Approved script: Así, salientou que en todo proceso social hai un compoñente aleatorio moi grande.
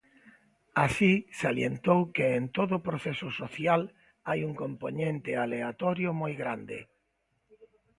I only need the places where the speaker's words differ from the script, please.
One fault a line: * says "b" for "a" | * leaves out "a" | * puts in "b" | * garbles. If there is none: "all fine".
all fine